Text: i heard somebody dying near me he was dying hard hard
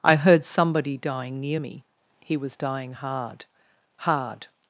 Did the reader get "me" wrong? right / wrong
right